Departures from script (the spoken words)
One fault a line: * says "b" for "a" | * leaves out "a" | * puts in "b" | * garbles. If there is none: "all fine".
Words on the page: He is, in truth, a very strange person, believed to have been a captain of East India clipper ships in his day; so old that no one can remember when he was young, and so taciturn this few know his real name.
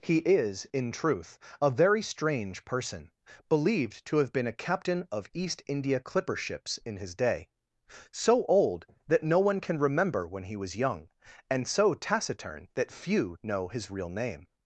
* says "that" for "this"